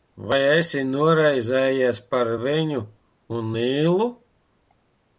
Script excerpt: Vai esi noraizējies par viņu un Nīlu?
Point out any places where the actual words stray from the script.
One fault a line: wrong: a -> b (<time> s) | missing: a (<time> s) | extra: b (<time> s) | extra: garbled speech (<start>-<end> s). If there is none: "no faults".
no faults